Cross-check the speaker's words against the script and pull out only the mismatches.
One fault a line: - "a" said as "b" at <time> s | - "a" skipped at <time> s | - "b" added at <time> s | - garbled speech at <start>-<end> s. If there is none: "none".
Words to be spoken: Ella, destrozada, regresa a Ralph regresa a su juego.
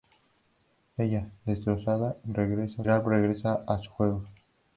none